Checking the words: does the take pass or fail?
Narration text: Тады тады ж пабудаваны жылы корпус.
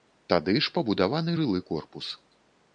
fail